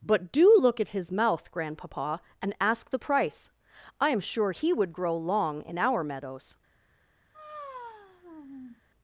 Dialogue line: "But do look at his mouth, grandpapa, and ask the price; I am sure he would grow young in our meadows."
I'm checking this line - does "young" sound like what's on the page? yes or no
no